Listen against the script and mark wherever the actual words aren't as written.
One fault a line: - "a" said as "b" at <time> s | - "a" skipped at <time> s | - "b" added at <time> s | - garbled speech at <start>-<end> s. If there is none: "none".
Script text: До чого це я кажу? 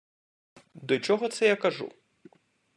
none